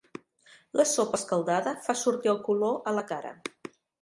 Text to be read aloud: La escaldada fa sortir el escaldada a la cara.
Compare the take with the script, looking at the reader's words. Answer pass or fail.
fail